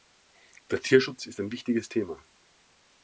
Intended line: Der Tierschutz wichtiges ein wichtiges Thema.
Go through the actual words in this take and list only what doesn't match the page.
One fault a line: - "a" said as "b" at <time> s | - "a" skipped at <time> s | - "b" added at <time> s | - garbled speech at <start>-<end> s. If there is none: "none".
- "wichtiges" said as "ist" at 1.3 s